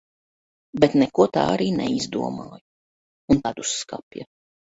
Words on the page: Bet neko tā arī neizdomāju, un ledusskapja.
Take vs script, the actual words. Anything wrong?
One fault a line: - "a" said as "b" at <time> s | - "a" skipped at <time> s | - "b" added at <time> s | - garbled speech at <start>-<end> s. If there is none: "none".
none